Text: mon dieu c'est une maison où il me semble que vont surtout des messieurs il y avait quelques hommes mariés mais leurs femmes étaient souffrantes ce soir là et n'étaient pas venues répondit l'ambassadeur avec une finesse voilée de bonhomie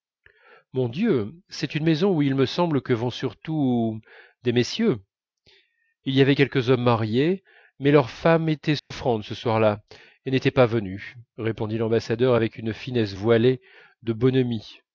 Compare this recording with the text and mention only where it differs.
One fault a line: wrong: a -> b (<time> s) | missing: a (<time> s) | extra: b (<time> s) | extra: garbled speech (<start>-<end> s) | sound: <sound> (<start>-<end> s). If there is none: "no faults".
sound: dropout (8.8-8.9 s)